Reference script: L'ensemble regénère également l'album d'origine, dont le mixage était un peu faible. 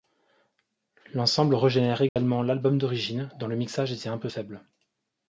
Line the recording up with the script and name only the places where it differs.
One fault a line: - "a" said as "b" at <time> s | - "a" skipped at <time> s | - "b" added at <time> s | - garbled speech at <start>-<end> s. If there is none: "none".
none